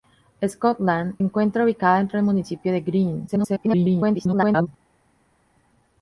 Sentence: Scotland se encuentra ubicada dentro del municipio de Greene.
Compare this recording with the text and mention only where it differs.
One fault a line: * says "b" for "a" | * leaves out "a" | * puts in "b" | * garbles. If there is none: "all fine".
* leaves out "se"
* garbles